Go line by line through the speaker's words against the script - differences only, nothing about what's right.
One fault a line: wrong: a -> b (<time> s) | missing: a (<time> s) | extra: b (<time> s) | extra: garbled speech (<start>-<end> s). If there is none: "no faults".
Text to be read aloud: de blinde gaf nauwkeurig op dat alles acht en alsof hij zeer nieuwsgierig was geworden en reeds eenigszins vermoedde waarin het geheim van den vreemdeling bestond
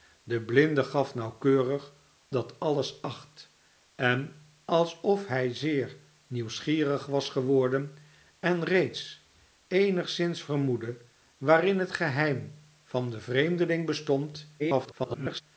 missing: op (1.9 s)
extra: garbled speech (14.6-15.4 s)